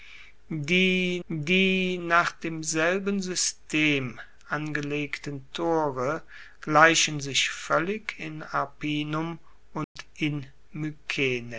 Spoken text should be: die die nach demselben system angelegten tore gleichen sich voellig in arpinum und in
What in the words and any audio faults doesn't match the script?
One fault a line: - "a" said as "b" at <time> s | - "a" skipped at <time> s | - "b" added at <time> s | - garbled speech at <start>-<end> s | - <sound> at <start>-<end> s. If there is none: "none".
- dropout at 9.8-10.0 s